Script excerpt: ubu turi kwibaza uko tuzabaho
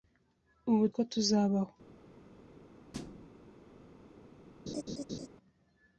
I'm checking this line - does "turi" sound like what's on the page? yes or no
no